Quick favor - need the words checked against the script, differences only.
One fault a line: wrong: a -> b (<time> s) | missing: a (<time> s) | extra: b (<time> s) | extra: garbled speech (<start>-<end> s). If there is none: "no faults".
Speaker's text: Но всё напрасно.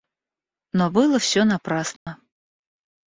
extra: было (0.9 s)